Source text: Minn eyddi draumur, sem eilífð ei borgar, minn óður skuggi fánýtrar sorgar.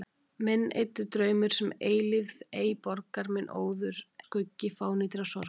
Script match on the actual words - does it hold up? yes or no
yes